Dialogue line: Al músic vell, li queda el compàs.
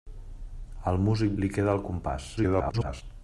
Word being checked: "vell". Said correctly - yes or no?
no